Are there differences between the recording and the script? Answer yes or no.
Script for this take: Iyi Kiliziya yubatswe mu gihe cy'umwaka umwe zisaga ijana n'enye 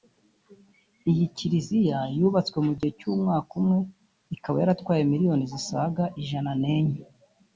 yes